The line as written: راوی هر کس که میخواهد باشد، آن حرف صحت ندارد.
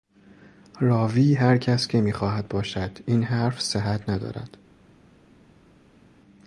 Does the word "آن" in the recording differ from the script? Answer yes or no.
yes